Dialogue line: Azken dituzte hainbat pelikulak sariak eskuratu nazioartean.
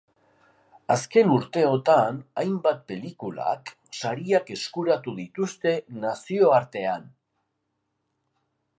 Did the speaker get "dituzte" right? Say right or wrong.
wrong